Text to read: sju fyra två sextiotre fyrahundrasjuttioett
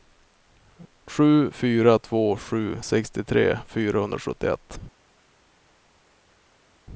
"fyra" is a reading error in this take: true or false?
false